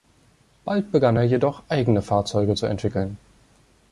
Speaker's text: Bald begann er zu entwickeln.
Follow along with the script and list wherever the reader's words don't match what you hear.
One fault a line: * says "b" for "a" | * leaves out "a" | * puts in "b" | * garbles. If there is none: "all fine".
* puts in "jedoch eigene Fahrzeuge"